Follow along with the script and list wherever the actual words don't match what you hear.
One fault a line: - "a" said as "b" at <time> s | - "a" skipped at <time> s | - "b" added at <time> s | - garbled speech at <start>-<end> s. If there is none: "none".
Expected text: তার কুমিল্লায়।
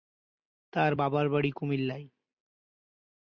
- "বাবার বাড়ি" added at 0.9 s